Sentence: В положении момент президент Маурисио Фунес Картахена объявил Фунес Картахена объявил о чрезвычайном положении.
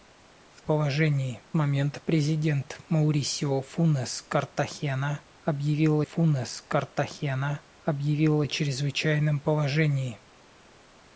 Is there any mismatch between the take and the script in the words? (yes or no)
no